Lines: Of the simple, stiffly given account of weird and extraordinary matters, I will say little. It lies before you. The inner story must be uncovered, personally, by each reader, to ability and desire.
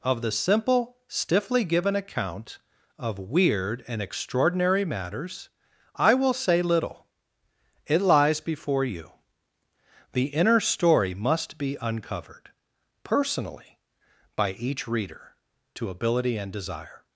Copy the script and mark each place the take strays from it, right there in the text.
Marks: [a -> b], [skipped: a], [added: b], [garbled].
Of the simple, stiffly given account of weird and extraordinary matters, I will say little. It lies before you. The inner story must be uncovered, personally, by each reader, to ability and desire.